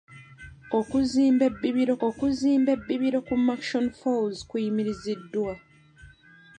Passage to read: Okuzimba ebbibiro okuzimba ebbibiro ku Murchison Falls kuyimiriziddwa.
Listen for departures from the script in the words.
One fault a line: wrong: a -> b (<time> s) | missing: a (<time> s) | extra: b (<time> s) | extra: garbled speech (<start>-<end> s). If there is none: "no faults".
no faults